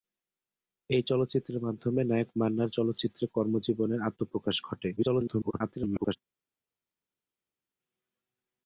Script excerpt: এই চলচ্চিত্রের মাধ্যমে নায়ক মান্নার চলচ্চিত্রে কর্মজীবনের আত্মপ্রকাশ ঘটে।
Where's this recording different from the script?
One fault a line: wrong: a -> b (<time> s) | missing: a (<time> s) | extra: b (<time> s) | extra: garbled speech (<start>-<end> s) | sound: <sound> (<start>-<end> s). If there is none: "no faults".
extra: garbled speech (5.0-6.2 s)